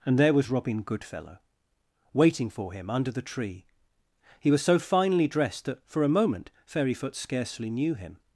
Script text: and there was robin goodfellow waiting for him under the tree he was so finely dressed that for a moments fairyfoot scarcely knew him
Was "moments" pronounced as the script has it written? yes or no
no